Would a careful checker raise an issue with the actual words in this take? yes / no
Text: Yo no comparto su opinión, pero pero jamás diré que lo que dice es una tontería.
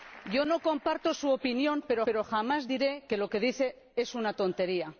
no